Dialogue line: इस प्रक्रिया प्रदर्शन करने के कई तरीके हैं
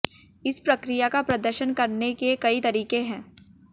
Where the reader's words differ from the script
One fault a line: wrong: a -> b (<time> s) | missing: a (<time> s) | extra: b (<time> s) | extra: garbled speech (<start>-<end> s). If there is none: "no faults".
extra: का (1.1 s)